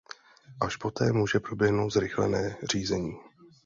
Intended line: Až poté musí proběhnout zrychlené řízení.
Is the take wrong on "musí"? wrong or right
wrong